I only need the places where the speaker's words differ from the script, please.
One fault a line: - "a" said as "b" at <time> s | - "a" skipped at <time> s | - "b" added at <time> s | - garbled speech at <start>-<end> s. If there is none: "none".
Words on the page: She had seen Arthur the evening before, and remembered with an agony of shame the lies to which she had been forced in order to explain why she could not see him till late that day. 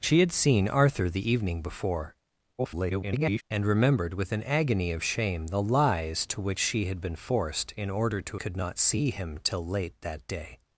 - garbled speech at 2.6-3.4 s
- "explain why she" skipped at 8.4 s